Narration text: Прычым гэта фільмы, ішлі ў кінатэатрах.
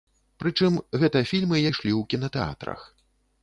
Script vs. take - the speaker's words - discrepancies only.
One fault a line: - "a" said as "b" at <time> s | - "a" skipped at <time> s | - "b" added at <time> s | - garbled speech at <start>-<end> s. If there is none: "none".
none